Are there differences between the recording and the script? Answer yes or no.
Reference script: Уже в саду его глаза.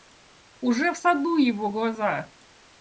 no